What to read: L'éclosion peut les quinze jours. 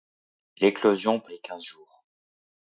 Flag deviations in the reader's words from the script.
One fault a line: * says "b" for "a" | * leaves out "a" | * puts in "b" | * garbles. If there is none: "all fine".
all fine